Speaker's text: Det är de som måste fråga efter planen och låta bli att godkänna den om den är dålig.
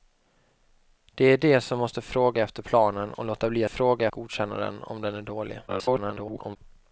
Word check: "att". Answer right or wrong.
wrong